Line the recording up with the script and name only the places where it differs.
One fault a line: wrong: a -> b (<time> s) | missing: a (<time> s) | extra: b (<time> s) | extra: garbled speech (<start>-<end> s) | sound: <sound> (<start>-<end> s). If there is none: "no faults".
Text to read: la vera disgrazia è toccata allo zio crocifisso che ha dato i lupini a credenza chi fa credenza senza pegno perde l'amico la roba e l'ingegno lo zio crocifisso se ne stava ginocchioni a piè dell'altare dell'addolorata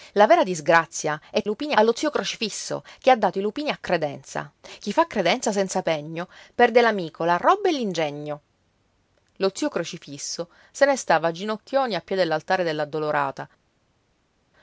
wrong: toccata -> lupini (1.4 s)